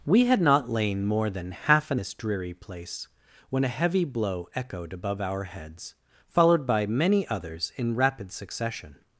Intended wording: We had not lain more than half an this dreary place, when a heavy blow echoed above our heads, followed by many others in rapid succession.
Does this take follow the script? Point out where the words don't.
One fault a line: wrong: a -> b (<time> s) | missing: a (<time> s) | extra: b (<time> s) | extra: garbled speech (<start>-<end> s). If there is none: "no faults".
no faults